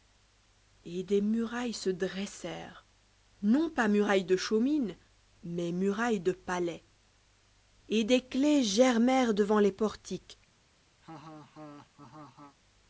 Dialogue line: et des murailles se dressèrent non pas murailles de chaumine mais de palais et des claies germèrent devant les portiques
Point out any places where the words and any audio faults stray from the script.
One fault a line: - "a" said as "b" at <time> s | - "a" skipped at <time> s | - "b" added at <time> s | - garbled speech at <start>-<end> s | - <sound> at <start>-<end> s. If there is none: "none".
- "murailles" added at 5.7 s
- laugh at 11.0-12.6 s